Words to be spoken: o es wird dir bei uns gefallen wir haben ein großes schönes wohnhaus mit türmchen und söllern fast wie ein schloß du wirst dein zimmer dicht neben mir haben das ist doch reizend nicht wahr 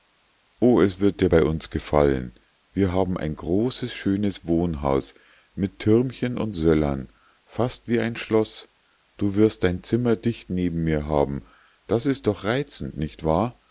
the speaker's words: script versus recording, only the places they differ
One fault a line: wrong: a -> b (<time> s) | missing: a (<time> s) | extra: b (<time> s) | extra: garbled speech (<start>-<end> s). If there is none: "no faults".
no faults